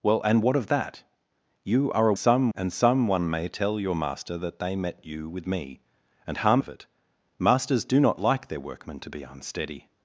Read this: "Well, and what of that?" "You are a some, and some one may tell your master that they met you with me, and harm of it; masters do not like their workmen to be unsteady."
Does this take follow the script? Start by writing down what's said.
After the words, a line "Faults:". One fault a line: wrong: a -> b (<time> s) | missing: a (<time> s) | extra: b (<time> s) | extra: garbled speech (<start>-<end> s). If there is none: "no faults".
"Well, and what of that?" "You are a some, and some one may tell your master that they met you with me, and harm of it; masters do not like their workmen to be unsteady."
Faults:
no faults